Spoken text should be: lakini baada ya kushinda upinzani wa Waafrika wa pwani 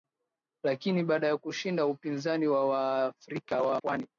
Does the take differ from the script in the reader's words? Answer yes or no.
no